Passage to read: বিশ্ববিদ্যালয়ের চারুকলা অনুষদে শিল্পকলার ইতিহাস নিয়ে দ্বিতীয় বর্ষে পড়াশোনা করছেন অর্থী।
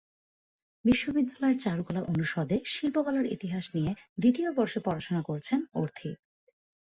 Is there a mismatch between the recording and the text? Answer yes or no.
no